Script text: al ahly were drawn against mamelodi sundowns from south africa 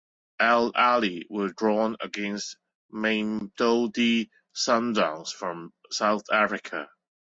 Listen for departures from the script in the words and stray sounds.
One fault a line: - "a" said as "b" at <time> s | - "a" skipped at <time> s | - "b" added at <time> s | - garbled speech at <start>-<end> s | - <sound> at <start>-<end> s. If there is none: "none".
none